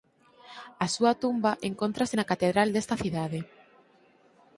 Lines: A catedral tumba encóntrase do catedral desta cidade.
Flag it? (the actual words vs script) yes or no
yes